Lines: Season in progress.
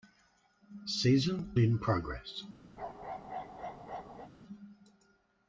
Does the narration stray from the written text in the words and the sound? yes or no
yes